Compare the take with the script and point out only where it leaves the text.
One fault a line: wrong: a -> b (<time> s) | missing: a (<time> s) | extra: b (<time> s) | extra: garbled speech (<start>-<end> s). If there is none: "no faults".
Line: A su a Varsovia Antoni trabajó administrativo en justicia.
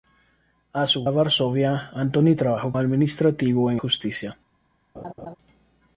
no faults